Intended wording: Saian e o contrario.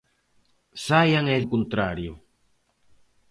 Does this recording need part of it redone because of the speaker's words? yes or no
no